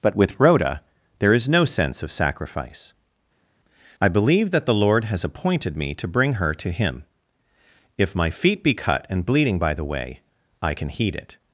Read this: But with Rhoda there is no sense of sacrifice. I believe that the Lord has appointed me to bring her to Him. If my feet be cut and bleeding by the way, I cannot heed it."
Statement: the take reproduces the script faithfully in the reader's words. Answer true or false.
false